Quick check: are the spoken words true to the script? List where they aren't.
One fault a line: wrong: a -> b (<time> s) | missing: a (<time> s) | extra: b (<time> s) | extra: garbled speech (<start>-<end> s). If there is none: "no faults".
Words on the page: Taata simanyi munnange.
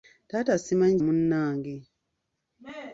no faults